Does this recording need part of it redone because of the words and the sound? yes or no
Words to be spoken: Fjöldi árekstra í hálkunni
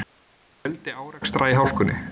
no